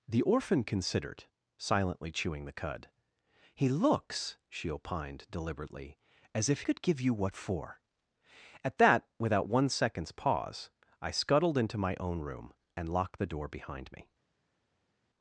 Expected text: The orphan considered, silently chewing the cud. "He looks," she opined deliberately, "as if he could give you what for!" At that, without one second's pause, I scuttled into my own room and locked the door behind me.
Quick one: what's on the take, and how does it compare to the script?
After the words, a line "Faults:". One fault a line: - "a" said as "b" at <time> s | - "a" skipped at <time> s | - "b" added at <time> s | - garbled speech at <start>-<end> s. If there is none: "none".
The orphan considered, silently chewing the cud. "He looks," she opined deliberately, "as if could give you what for!" At that, without one second's pause, I scuttled into my own room and locked the door behind me.
Faults:
- "he" skipped at 6.6 s